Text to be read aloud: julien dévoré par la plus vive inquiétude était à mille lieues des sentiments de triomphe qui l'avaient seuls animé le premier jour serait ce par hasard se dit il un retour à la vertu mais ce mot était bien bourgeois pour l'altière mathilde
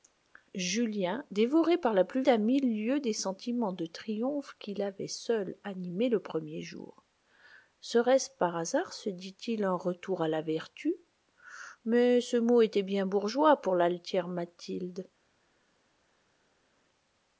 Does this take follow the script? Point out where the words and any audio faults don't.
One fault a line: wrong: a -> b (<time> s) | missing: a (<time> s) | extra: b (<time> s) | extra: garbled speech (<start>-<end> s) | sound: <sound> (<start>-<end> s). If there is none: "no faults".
missing: vive inquiétude était (2.2 s)